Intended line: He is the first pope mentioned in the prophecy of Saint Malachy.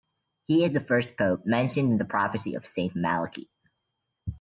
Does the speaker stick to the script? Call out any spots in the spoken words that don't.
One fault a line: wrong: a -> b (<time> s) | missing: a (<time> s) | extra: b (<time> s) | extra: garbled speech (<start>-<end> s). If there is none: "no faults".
no faults